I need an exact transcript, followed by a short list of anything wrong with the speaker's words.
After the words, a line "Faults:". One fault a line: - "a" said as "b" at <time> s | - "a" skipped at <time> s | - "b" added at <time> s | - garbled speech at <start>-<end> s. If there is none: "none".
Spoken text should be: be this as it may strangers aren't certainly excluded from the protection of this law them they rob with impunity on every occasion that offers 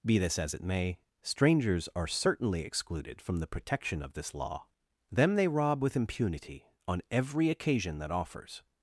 be this as it may strangers are certainly excluded from the protection of this law them they rob with impunity on every occasion that offers
Faults:
- "aren't" said as "are" at 1.9 s